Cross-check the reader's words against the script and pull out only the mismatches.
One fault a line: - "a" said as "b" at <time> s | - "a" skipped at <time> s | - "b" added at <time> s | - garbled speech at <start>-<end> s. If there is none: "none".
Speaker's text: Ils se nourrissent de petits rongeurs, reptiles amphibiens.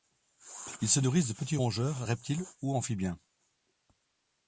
- "ou" added at 2.6 s